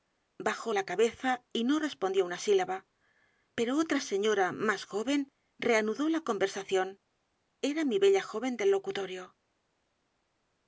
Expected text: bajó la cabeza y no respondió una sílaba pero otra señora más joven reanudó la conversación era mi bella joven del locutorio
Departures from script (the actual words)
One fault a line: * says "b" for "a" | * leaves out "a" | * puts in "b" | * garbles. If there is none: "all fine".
all fine